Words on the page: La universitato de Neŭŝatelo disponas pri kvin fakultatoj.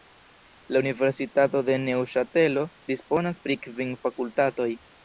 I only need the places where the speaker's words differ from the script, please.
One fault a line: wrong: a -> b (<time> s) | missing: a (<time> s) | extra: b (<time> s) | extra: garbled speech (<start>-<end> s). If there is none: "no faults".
no faults